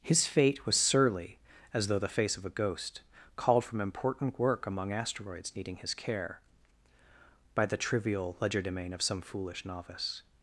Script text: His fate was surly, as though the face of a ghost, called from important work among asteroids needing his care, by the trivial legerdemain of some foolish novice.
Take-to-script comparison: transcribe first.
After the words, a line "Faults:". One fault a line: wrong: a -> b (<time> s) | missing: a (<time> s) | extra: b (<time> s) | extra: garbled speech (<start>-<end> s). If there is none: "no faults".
His fate was surly, as though the face of a ghost, called from important work among asteroids needing his care, by the trivial legerdemain of some foolish novice.
Faults:
no faults